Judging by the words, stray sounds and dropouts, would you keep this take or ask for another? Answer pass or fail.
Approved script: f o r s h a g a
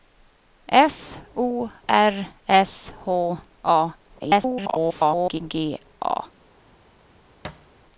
fail